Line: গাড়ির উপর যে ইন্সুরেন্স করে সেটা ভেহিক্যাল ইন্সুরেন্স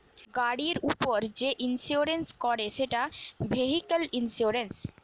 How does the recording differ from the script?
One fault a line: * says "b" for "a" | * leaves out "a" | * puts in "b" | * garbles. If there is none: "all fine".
all fine